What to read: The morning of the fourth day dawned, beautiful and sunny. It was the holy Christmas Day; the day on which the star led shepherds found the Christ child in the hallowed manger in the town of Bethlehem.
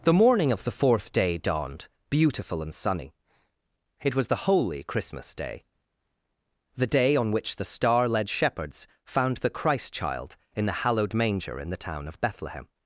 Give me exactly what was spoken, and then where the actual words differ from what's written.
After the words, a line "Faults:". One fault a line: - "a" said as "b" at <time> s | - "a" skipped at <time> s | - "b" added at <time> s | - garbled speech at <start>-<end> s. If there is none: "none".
The morning of the fourth day dawned, beautiful and sunny. It was the holy Christmas Day; the day on which the star led shepherds found the Christ child in the hallowed manger in the town of Bethlehem.
Faults:
none